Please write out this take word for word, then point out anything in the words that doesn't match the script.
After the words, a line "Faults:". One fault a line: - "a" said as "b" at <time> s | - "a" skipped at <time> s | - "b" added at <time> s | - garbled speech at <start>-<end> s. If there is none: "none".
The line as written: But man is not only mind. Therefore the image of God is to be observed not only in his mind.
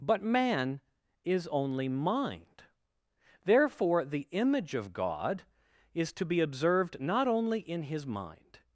But man is only mind. Therefore the image of God is to be observed not only in his mind.
Faults:
- "not" skipped at 1.5 s